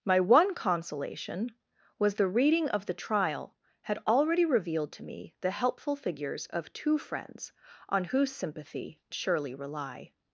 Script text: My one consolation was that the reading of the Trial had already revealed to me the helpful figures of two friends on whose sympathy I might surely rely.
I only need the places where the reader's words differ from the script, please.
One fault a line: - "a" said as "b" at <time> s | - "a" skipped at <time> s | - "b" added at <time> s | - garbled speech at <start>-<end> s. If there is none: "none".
- "that" skipped at 2.1 s
- "I might" skipped at 9.0 s